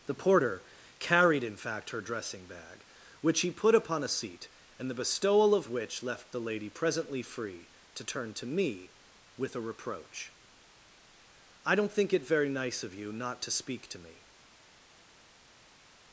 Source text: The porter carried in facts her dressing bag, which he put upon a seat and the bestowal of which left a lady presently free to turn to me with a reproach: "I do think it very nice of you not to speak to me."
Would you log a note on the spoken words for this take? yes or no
yes